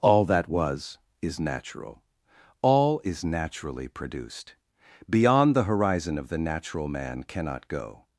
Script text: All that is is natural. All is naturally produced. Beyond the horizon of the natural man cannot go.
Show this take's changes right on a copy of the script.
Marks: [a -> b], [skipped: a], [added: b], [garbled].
All that [is -> was] is natural. All is naturally produced. Beyond the horizon of the natural man cannot go.